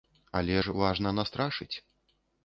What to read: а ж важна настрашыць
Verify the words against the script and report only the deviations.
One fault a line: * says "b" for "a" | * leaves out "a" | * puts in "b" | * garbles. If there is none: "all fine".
* says "але" for "а"